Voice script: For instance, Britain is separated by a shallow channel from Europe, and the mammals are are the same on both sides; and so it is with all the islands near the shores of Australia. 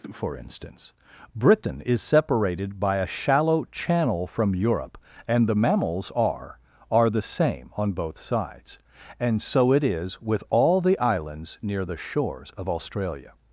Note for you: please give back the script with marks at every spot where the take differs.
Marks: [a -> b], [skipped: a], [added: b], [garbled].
For instance, Britain is separated by a shallow channel from Europe, and the mammals are are the same on both sides; and so it is with all the islands near the shores of Australia.